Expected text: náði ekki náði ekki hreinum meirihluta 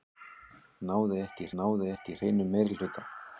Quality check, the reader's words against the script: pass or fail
pass